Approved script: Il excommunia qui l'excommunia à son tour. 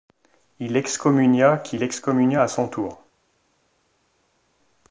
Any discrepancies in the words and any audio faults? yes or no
no